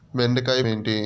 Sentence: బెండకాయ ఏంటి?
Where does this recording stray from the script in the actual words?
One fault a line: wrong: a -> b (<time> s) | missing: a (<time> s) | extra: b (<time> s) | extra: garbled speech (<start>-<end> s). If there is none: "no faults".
no faults